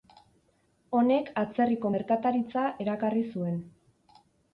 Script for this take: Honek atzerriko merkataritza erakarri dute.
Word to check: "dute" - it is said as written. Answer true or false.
false